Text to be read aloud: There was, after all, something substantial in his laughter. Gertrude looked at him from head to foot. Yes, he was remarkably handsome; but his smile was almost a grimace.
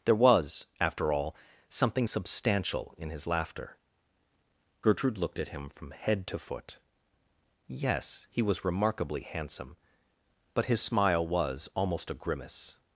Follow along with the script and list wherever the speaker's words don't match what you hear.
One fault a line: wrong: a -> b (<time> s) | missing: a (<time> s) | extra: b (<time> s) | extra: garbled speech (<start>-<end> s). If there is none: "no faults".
no faults